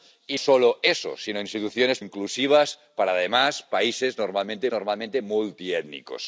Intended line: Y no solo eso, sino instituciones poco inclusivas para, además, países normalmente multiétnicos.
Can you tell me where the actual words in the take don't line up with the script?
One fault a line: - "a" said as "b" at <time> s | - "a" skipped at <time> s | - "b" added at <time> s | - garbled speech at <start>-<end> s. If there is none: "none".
- "no" skipped at 0.4 s
- "poco" skipped at 2.0 s
- "normalmente" added at 4.7 s